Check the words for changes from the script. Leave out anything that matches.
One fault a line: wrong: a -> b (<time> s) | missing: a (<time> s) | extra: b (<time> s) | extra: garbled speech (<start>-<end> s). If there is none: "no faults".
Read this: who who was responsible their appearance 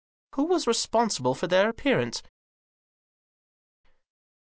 missing: who (0.5 s)
extra: for (1.3 s)